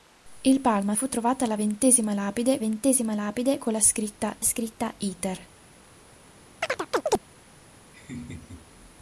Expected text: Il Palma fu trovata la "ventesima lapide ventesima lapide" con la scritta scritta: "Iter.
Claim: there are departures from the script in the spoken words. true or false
false